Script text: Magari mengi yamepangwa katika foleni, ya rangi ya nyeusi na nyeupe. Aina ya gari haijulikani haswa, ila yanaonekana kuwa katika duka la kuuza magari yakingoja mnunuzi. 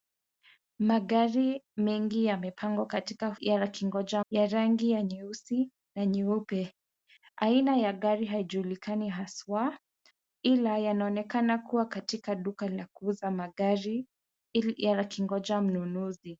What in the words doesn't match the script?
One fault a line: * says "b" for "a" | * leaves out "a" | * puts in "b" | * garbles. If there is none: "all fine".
* says "yakingoja" for "foleni"